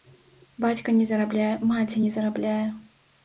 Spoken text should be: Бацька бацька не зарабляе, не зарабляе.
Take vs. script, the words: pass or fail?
fail